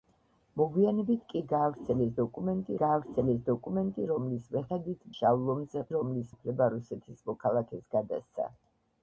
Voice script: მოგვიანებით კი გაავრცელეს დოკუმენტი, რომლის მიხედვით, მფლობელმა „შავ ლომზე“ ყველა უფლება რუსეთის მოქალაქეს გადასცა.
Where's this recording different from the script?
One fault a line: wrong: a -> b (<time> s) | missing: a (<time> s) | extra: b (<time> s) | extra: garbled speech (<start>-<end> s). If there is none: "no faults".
extra: გაავრცელეს დოკუმენტი (2.8 s)
missing: მფლობელმა (5.0 s)
wrong: ყველა -> რომლის (5.9 s)